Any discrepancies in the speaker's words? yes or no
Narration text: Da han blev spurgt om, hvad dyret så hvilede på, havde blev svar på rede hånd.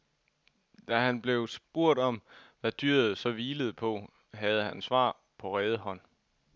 yes